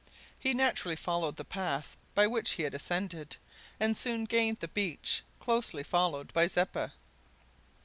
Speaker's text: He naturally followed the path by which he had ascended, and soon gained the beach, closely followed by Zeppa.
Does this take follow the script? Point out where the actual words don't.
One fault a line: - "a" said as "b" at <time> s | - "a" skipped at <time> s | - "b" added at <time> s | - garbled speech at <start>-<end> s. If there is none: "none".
none